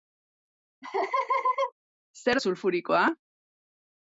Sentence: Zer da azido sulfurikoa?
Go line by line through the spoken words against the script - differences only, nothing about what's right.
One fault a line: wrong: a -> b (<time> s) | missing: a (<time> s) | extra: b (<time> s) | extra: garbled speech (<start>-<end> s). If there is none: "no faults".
missing: da azido (2.4 s)